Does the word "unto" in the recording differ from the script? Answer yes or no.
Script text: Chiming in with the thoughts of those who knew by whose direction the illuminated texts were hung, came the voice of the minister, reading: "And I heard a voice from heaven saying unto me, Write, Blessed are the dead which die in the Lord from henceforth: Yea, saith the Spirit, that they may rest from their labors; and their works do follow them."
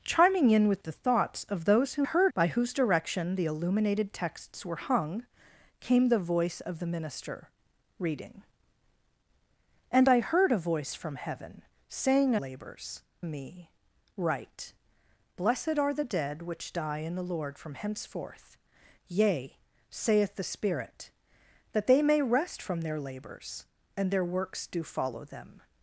yes